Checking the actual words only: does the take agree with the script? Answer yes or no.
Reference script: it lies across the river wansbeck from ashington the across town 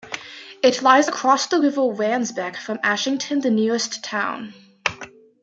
no